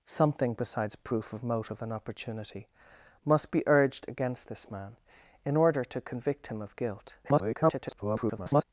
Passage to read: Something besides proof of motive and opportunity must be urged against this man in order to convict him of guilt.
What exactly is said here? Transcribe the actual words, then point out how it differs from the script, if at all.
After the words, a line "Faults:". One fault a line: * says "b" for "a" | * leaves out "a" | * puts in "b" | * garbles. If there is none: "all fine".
Something besides proof of motive and opportunity must be urged against this man in order to convict him of guilt. [garbled]
Faults:
* garbles